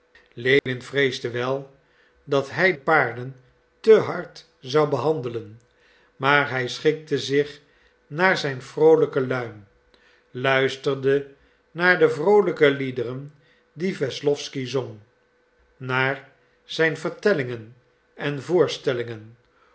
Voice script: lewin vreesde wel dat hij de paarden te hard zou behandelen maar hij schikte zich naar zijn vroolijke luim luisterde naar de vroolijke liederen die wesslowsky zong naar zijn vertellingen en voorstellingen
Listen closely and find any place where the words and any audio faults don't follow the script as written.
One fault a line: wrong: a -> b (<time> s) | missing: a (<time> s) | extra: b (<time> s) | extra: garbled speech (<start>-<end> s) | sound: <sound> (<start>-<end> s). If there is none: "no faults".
sound: dropout (0.6-0.7 s)
missing: de (2.7 s)